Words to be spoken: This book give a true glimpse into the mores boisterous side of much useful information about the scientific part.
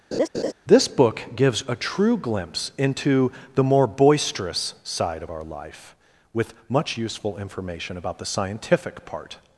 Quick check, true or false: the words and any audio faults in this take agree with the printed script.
false